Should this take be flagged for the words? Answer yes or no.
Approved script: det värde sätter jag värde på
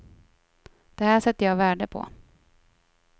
yes